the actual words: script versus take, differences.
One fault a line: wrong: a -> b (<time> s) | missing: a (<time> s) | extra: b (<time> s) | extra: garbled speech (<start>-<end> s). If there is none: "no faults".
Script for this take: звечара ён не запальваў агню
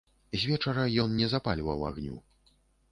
no faults